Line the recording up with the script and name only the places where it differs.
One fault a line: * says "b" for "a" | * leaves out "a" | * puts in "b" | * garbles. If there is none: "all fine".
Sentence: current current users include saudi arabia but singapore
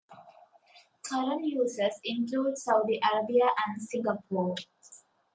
* leaves out "current"
* says "and" for "but"